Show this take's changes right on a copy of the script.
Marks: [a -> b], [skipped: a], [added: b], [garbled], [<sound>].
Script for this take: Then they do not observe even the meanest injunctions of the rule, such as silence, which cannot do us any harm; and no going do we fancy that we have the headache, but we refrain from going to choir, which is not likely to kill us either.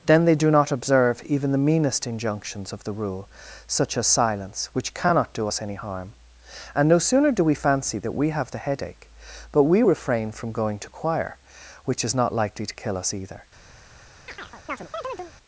Then they do not observe even the meanest injunctions of the rule, such as silence, which cannot do us any harm; and no [going -> sooner] do we fancy that we have the headache, but we refrain from going to choir, which is not likely to kill us either. [chirp]